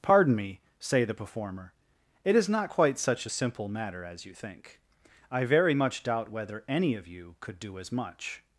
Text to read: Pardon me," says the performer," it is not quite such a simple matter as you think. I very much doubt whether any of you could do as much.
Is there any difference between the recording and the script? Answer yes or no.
yes